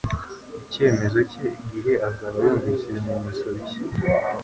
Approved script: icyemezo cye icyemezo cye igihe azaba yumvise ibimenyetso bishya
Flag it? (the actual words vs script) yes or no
yes